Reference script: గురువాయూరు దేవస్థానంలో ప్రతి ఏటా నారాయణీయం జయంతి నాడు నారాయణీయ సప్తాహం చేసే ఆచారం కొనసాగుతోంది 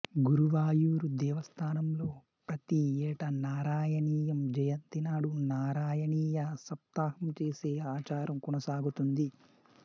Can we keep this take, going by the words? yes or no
yes